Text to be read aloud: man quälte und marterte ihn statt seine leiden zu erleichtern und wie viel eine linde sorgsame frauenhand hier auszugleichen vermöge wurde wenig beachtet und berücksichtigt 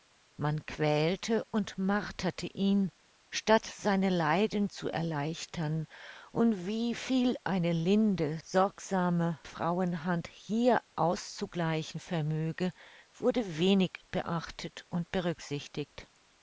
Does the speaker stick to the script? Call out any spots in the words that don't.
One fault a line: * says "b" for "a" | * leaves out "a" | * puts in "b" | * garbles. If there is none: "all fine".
all fine